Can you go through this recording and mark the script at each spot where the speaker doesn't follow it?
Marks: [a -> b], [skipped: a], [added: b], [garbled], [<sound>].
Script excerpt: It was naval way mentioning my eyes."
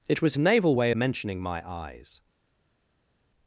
It was naval way mentioning my eyes."